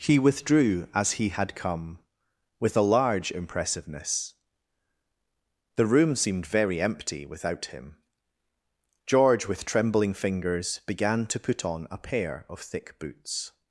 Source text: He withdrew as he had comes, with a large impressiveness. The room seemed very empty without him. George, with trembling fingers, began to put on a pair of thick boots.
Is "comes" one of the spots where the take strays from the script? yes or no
yes